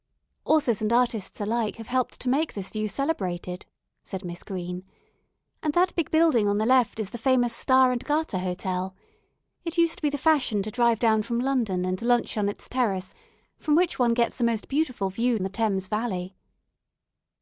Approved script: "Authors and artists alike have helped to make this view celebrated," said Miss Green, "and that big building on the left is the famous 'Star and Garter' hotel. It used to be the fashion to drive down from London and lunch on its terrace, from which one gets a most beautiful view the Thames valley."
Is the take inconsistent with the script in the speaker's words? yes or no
no